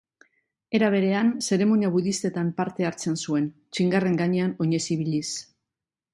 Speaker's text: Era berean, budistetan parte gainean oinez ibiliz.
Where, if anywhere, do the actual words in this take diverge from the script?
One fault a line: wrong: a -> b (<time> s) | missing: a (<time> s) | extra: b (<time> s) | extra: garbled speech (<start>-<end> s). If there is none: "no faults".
extra: zeremonia (1.5 s)
extra: hartzen zuen txingarren (2.9 s)